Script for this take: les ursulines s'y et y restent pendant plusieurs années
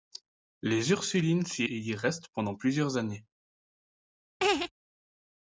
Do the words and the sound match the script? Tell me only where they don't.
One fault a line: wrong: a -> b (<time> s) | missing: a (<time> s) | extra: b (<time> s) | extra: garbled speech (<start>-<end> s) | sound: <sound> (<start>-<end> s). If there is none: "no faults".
sound: laugh (4.4-4.7 s)